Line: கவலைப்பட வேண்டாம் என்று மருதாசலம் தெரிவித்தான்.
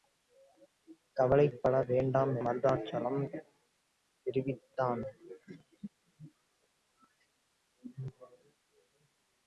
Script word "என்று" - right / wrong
wrong